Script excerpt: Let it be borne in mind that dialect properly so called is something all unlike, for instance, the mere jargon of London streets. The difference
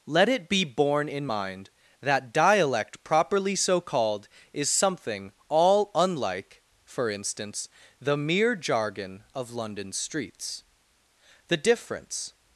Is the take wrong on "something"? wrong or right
right